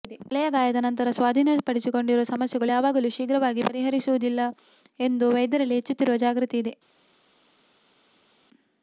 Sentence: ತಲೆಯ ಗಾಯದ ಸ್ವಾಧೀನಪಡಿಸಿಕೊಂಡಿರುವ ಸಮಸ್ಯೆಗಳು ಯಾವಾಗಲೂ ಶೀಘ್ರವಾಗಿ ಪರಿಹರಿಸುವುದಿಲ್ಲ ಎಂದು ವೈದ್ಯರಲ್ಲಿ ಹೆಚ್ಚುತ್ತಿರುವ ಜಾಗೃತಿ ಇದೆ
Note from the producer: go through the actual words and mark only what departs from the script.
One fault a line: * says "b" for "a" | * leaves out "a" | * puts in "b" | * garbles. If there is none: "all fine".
* puts in "ನಂತರ"